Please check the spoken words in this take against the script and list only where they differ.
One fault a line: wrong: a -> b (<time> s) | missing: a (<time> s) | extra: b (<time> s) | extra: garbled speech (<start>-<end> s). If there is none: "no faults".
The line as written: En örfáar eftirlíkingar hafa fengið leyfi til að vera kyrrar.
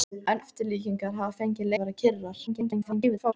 missing: örfáar (0.4 s)
missing: leyfi til (1.7 s)
extra: garbled speech (2.5-3.3 s)